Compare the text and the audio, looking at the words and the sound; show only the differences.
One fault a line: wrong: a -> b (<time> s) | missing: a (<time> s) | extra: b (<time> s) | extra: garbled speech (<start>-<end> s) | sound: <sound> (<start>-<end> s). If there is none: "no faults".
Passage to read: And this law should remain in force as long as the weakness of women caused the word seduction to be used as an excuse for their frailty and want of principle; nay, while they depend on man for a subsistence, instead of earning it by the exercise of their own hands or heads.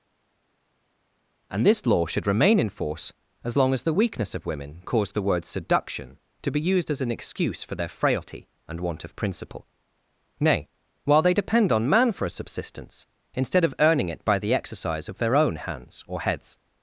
no faults